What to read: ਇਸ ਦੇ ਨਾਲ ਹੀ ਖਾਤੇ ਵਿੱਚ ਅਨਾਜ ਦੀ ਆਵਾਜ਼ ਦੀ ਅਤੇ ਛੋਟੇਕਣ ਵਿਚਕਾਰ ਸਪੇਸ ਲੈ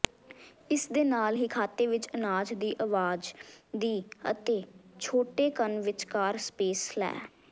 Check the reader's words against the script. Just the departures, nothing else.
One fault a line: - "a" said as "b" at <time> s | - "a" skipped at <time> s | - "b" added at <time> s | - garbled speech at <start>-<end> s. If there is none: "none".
none